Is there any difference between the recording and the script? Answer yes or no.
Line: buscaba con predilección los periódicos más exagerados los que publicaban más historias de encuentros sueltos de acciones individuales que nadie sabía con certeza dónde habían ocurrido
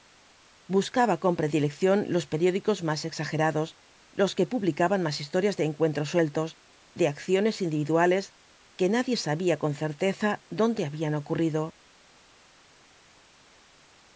no